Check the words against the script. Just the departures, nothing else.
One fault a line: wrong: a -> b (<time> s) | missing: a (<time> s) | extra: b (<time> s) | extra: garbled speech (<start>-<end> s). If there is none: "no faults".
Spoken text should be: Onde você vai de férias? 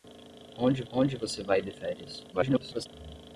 extra: onde (0.9 s)
extra: garbled speech (2.3-2.9 s)